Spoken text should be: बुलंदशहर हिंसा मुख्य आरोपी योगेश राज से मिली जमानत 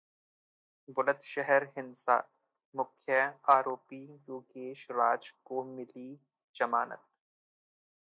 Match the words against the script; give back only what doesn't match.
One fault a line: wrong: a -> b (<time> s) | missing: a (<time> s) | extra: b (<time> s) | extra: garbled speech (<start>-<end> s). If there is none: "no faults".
wrong: से -> को (5.5 s)